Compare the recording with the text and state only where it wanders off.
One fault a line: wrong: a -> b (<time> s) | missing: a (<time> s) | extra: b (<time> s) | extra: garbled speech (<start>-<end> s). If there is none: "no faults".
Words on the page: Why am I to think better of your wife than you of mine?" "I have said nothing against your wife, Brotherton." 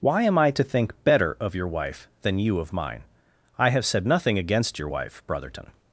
no faults